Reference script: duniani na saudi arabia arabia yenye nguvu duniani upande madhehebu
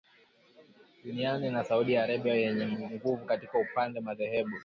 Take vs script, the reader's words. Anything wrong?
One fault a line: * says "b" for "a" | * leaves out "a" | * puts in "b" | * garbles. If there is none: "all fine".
* leaves out "arabia"
* says "katika" for "duniani"